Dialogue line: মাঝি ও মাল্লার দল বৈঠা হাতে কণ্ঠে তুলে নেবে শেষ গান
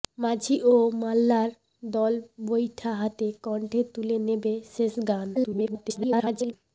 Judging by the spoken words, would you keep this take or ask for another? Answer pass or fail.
fail